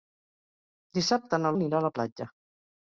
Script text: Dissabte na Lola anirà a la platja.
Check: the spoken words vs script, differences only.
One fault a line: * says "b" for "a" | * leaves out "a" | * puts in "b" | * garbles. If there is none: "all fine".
* leaves out "Lola"